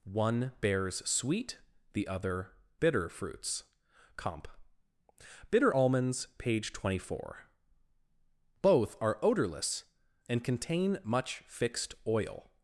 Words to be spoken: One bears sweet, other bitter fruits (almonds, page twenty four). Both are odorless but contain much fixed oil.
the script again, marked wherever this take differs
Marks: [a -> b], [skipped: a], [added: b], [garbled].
One bears sweet, [added: the] other bitter fruits [added: comp Bitter] (almonds, page twenty four). Both are odorless [but -> and] contain much fixed oil.